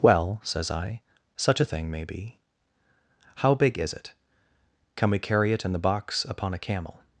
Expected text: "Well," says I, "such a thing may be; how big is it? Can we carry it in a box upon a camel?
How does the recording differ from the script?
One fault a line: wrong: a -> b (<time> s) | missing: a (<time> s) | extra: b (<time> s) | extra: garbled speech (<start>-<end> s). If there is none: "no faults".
wrong: a -> the (5.7 s)